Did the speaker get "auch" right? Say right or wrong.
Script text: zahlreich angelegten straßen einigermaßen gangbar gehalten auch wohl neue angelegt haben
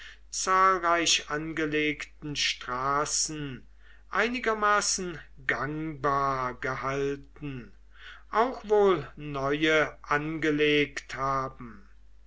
right